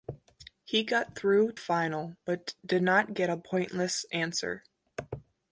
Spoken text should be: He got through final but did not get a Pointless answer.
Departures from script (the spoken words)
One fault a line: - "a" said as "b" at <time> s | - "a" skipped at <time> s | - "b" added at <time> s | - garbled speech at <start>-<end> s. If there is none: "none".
none